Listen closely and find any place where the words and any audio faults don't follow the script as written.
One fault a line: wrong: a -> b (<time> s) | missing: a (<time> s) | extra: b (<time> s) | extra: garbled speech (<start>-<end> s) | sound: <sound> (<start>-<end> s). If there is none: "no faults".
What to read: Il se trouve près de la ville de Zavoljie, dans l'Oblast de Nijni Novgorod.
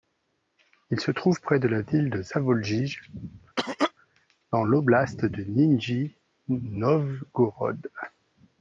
sound: cough (3.6-3.9 s)